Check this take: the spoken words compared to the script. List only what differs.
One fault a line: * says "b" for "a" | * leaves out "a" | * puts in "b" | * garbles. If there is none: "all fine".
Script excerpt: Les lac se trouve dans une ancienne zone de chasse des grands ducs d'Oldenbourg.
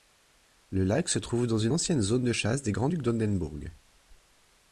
* says "Le" for "Les"